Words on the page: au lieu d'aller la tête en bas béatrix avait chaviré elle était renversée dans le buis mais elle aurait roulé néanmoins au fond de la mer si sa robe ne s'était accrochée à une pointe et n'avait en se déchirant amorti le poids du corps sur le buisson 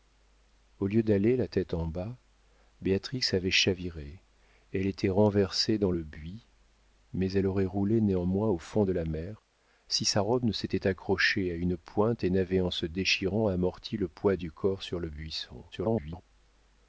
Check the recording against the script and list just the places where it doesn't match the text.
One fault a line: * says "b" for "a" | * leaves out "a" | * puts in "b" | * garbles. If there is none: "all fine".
* garbles